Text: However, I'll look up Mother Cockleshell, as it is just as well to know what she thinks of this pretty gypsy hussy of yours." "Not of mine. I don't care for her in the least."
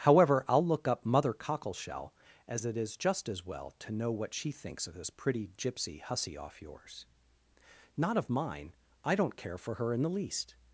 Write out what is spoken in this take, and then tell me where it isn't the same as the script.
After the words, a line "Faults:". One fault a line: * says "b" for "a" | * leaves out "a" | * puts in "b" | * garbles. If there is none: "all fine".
However, I'll look up Mother Cockleshell, as it is just as well to know what she thinks of this pretty gypsy hussy off yours." "Not of mine. I don't care for her in the least."
Faults:
* says "off" for "of"